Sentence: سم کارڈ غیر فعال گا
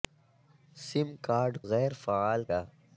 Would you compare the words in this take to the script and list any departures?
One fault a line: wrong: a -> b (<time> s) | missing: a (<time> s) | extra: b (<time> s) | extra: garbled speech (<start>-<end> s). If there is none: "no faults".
no faults